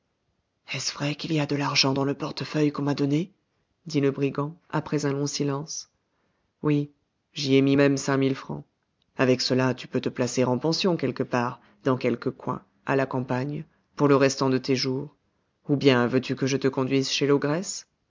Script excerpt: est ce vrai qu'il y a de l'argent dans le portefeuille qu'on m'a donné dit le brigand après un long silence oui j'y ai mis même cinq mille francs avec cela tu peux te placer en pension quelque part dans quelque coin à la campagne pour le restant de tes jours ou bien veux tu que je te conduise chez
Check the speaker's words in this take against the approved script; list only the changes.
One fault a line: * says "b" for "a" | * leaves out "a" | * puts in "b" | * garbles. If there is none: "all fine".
all fine